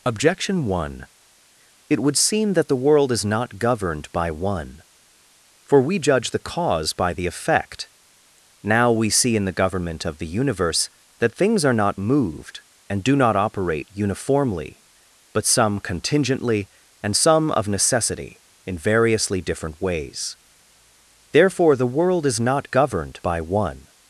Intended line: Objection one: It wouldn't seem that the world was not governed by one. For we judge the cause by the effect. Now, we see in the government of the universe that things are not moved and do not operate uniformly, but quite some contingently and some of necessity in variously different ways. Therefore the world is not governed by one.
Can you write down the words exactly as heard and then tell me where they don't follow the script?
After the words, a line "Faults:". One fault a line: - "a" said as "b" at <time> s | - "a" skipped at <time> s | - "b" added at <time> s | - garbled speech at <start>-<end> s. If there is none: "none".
Objection one: It would seem that the world is not governed by one. For we judge the cause by the effect. Now, we see in the government of the universe that things are not moved and do not operate uniformly, but some contingently and some of necessity in variously different ways. Therefore the world is not governed by one.
Faults:
- "wouldn't" said as "would" at 2.0 s
- "was" said as "is" at 3.1 s
- "quite" skipped at 15.4 s